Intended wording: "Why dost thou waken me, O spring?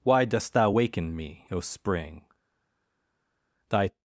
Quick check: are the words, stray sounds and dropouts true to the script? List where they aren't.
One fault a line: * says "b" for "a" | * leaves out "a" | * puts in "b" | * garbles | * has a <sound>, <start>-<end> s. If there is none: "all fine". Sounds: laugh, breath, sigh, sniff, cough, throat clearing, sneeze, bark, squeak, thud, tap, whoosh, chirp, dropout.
* puts in "Thy"